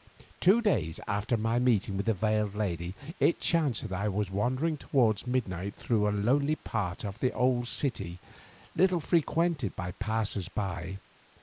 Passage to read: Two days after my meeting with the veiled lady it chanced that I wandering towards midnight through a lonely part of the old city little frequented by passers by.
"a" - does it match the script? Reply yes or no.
yes